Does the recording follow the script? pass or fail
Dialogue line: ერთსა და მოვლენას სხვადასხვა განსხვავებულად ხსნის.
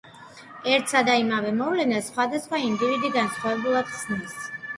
fail